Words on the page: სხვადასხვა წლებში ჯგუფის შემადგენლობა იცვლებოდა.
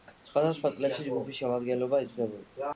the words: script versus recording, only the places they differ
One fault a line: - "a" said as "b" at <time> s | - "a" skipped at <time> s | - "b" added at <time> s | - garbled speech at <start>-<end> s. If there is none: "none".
none